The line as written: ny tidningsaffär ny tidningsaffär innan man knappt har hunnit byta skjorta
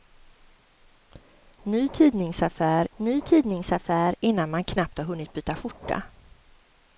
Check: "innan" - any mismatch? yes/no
no